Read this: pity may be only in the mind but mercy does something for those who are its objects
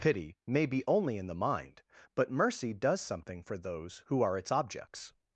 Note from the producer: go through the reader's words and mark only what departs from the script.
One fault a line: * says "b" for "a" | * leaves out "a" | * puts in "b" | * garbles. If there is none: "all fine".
all fine